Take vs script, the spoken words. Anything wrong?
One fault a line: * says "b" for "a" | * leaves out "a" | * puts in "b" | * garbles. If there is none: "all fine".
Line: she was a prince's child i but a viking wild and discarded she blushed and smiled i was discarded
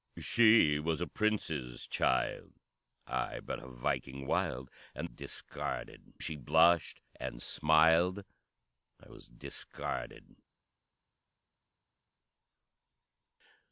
all fine